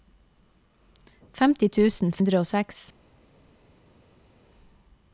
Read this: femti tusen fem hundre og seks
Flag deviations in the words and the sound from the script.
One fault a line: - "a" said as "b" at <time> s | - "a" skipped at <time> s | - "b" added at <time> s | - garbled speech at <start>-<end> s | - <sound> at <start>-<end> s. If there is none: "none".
- "fem" skipped at 2.2 s